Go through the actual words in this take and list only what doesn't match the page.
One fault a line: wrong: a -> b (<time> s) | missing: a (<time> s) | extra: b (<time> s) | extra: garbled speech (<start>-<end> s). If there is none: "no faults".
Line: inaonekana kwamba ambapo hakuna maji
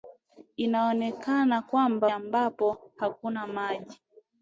no faults